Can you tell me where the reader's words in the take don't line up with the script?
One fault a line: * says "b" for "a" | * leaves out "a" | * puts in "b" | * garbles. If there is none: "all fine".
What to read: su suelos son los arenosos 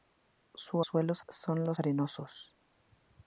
all fine